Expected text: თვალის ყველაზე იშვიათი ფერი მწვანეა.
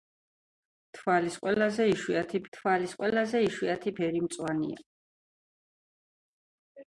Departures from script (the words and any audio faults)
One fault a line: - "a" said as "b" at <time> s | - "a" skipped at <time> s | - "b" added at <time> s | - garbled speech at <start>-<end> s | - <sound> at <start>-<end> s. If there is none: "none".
- "თვალის ყველაზე იშვიათი" added at 2.6 s